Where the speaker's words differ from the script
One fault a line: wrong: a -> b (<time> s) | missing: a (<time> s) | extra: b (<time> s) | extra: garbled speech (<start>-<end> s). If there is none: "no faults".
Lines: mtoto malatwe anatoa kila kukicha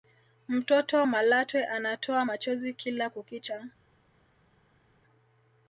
extra: machozi (2.2 s)